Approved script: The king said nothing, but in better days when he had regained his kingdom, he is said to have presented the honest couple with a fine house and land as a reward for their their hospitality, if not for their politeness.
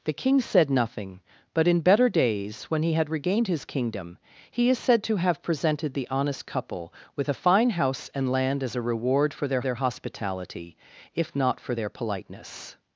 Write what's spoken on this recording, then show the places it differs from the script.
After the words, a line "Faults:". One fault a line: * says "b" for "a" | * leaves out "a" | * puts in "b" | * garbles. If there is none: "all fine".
The king said nothing, but in better days when he had regained his kingdom, he is said to have presented the honest couple with a fine house and land as a reward for their their hospitality, if not for their politeness.
Faults:
all fine